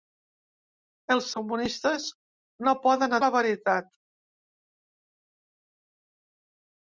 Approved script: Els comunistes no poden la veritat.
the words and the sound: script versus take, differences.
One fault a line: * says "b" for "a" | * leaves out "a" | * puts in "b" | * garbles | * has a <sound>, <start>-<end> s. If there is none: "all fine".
all fine